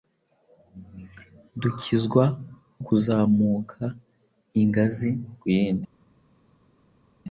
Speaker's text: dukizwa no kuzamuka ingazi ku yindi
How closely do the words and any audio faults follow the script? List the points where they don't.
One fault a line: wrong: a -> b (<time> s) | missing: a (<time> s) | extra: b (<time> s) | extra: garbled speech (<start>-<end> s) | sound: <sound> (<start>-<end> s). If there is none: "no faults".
missing: no (2.2 s)